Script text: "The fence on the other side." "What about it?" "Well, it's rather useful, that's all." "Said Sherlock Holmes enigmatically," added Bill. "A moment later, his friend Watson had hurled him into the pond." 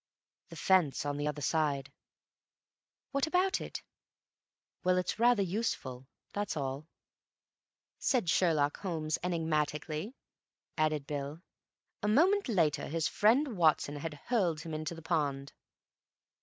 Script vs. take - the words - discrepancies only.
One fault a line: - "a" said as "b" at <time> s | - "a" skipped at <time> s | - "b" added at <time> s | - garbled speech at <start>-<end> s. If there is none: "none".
none